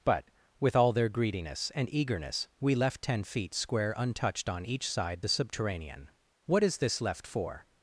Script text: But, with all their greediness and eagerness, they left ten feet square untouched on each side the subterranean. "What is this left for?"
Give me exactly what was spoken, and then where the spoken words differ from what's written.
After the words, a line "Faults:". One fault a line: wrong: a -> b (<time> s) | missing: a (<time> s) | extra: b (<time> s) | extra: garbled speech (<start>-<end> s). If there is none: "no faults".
But, with all their greediness and eagerness, we left ten feet square untouched on each side the subterranean. "What is this left for?"
Faults:
wrong: they -> we (2.6 s)